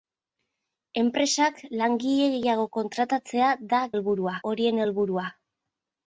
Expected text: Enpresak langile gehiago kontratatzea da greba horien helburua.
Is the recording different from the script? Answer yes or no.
yes